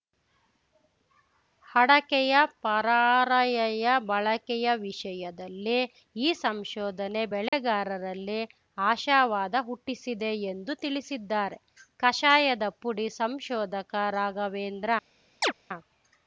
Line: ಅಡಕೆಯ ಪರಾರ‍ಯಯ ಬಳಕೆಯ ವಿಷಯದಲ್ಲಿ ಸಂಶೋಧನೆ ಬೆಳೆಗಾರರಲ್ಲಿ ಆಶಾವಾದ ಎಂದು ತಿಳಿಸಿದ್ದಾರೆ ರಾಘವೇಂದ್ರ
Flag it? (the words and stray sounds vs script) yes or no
yes